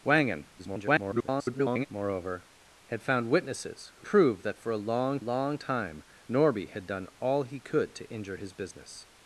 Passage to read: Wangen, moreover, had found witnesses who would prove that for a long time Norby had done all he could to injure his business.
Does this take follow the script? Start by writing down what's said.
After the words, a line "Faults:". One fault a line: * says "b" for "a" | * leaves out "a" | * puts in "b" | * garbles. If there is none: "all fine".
Wangen, [garbled] moreover, had found witnesses who prove that for a long long time Norby had done all he could to injure his business.
Faults:
* garbles
* leaves out "would"
* puts in "long"